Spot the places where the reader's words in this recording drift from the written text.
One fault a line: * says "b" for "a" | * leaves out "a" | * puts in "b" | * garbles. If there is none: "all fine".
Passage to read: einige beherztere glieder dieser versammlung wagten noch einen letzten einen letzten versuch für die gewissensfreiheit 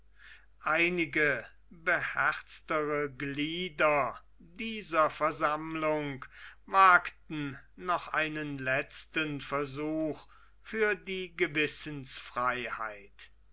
* leaves out "einen letzten"